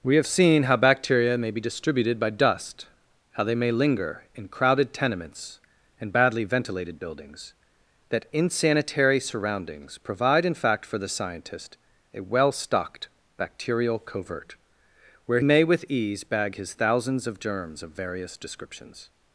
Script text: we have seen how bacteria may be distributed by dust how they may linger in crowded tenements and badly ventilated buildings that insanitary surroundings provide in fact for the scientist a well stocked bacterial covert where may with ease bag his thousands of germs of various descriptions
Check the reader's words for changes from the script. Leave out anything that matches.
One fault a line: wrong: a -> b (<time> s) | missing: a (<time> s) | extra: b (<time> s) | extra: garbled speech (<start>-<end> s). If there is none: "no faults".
no faults